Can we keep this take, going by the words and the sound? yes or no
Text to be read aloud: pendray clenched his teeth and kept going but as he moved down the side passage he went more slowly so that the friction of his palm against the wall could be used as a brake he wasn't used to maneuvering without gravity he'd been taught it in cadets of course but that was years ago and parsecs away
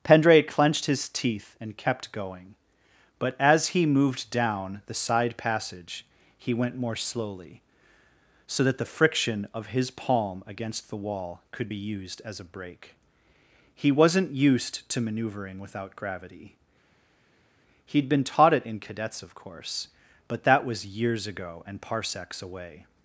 yes